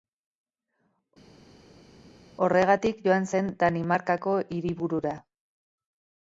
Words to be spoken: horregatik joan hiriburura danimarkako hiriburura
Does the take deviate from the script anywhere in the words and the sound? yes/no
yes